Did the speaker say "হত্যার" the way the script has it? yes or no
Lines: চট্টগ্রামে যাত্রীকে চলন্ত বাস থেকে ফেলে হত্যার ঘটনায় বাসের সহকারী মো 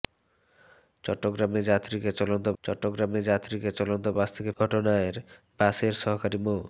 no